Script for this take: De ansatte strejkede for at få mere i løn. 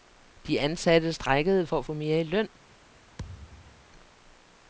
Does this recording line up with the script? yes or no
yes